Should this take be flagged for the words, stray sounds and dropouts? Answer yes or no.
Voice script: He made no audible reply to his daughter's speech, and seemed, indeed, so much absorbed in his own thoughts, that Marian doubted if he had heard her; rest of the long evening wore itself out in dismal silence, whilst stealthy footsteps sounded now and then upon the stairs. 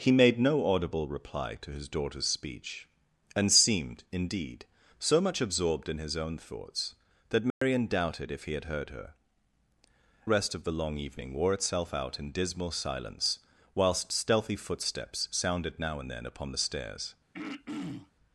yes